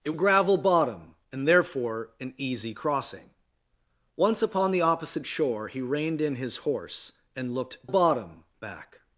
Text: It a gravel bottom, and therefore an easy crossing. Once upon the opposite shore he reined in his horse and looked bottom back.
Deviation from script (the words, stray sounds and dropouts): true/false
false